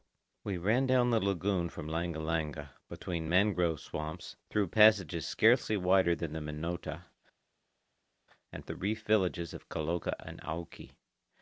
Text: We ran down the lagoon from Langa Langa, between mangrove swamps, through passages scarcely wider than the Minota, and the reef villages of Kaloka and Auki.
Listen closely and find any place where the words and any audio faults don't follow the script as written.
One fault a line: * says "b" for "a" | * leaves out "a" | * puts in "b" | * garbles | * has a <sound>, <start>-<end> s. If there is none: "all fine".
all fine